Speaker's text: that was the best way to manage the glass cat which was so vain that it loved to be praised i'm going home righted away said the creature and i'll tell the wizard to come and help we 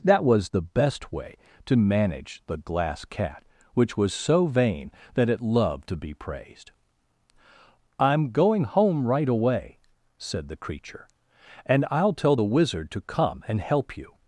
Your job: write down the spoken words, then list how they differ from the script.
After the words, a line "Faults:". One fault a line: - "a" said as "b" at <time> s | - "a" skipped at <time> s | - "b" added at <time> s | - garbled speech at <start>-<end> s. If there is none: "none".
that was the best way to manage the glass cat which was so vain that it loved to be praised i'm going home right away said the creature and i'll tell the wizard to come and help you
Faults:
- "righted" said as "right" at 9.1 s
- "we" said as "you" at 14.0 s